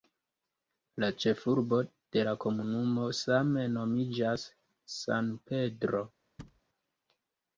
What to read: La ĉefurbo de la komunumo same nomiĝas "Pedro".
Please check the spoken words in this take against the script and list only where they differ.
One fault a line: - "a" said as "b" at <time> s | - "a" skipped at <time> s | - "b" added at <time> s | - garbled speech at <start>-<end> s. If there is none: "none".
- "San" added at 5.0 s